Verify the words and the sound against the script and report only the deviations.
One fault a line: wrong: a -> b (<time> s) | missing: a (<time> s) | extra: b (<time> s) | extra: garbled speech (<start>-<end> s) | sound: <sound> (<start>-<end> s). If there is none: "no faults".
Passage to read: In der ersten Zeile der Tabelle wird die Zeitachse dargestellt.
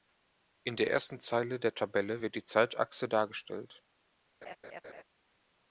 sound: laugh (4.4-5.0 s)